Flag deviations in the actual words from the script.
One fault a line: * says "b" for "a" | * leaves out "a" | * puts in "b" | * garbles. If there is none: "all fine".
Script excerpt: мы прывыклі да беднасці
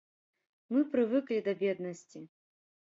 all fine